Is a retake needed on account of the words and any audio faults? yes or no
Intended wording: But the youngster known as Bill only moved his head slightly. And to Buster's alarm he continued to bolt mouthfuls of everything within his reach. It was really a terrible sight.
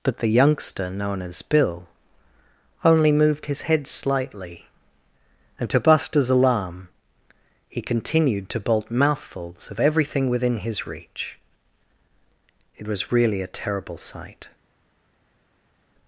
no